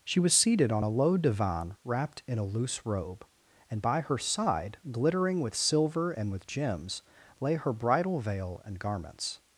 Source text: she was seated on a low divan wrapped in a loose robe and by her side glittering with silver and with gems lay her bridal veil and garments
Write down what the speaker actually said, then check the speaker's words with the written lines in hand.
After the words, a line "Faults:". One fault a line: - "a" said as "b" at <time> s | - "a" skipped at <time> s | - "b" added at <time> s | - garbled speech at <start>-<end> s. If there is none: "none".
she was seated on a low divan wrapped in a loose robe and by her side glittering with silver and with gems lay her bridal veil and garments
Faults:
none